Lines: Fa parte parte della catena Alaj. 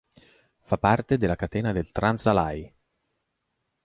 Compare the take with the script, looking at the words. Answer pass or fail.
fail